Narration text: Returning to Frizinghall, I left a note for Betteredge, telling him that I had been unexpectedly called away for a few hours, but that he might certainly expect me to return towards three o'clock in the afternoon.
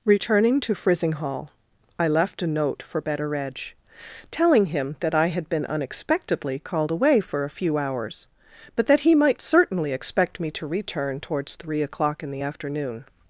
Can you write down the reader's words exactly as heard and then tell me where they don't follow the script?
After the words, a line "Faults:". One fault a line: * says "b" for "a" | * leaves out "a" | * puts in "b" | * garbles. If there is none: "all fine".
Returning to Frizinghall, I left a note for Betteredge, telling him that I had been unexpectedly called away for a few hours, but that he might certainly expect me to return towards three o'clock in the afternoon.
Faults:
all fine